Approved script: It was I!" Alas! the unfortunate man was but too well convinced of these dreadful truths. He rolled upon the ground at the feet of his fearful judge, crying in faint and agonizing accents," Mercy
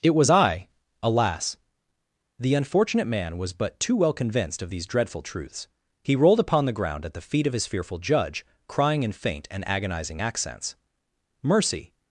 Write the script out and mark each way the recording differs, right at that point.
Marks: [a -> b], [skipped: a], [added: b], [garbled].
It was I!" Alas! the unfortunate man was but too well convinced of these dreadful truths. He rolled upon the ground at the feet of his fearful judge, crying in faint and agonizing accents," Mercy